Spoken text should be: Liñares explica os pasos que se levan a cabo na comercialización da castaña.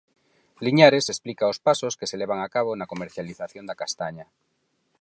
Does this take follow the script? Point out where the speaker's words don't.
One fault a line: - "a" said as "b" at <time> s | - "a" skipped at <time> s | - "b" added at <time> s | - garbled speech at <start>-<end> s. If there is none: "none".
none